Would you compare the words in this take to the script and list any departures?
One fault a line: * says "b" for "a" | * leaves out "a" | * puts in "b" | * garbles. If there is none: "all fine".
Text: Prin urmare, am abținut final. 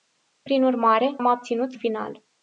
all fine